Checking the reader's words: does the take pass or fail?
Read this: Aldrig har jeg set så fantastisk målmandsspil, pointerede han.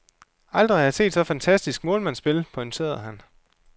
pass